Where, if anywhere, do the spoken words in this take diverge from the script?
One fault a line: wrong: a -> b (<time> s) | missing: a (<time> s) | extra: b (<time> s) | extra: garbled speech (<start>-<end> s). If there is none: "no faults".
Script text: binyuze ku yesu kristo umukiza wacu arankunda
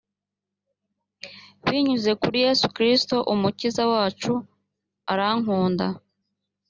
wrong: ku -> kuri (2.2 s)